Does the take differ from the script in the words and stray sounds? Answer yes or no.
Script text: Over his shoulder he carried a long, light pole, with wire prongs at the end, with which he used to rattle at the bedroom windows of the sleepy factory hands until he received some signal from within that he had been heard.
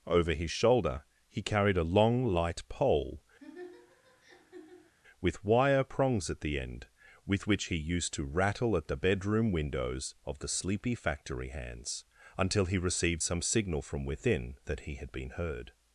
yes